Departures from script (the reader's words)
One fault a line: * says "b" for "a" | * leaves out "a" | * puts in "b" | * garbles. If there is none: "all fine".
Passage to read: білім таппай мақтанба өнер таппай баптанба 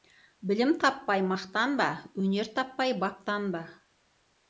all fine